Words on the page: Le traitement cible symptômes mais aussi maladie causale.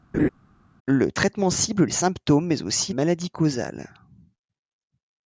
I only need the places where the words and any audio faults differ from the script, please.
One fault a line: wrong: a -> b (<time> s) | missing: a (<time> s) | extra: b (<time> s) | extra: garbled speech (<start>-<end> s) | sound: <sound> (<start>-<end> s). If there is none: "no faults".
sound: laugh (0.1-0.3 s)